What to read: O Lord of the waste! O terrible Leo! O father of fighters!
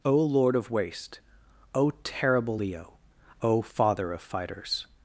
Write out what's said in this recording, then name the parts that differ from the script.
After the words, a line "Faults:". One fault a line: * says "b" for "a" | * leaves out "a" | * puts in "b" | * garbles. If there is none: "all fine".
O Lord of waste! O terrible Leo! O father of fighters!
Faults:
* leaves out "the"